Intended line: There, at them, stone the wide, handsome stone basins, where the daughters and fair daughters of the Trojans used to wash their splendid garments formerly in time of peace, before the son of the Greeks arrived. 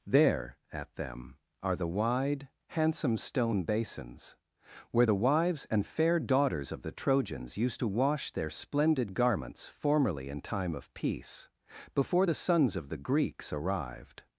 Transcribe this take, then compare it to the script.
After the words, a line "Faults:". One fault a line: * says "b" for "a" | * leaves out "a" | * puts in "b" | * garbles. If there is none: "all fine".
There, at them, are the wide, handsome stone basins, where the wives and fair daughters of the Trojans used to wash their splendid garments formerly in time of peace, before the sons of the Greeks arrived.
Faults:
* says "are" for "stone"
* says "wives" for "daughters"
* says "sons" for "son"